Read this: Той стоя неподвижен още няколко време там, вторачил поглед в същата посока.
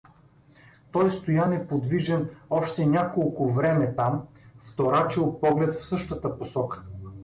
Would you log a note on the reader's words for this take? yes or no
no